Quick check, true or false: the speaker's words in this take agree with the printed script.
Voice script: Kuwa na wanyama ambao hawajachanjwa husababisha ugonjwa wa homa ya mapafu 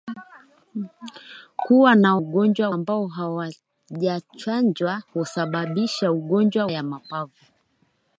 false